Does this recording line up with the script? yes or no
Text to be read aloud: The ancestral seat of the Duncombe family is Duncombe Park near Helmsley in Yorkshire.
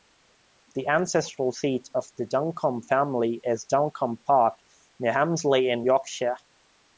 yes